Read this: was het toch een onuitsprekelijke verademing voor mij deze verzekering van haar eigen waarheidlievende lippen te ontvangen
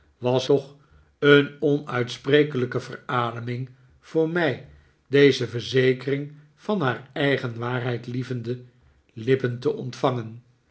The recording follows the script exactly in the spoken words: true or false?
false